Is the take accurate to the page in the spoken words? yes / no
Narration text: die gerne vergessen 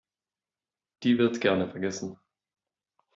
no